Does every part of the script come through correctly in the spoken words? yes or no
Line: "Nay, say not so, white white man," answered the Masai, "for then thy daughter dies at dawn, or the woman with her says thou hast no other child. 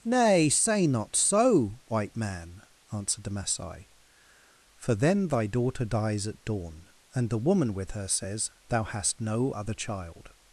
no